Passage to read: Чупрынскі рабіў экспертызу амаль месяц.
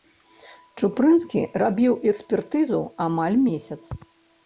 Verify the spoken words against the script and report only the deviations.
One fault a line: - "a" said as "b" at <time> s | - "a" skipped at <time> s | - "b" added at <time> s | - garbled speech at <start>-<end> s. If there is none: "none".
none